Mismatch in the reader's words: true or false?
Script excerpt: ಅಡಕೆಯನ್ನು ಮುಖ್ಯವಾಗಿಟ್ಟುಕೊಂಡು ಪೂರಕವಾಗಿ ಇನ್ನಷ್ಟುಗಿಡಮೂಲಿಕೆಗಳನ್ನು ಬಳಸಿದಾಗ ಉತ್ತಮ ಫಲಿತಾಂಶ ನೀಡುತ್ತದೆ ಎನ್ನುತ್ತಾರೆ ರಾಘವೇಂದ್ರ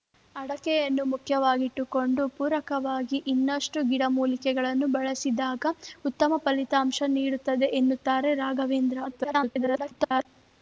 true